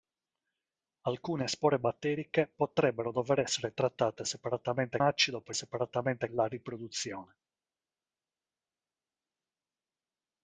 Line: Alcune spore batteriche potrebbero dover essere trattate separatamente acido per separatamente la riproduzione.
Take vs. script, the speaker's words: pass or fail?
pass